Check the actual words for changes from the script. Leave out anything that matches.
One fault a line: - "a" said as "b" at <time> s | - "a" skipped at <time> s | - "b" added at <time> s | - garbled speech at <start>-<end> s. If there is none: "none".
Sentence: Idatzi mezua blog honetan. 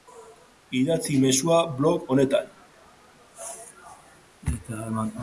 none